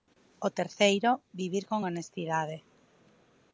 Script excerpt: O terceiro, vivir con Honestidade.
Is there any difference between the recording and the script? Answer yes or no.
no